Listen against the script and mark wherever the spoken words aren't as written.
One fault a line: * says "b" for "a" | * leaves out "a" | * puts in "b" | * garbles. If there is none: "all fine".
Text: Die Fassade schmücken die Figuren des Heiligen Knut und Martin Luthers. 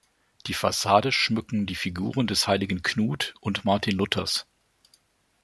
all fine